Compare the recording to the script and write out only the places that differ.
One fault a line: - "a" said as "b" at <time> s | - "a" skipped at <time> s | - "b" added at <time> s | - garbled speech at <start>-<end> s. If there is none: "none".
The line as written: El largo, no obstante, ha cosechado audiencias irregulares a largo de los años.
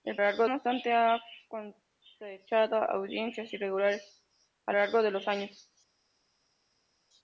none